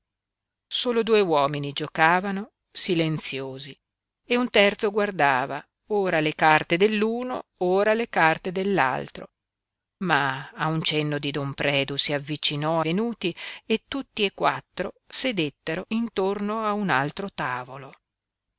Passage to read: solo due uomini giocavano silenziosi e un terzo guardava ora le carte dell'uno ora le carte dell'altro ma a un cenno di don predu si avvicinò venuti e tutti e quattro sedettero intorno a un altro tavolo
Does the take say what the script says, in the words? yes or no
yes